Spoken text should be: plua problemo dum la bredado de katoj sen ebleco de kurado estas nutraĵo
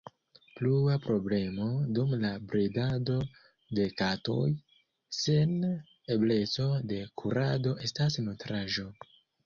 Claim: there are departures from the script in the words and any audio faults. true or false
false